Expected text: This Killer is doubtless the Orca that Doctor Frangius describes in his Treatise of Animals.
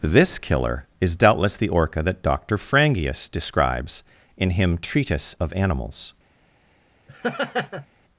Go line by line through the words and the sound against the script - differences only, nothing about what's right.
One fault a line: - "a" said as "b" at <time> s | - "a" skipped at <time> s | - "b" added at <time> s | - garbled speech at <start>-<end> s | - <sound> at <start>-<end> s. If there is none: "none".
- "his" said as "him" at 4.5 s
- laugh at 7.1-7.9 s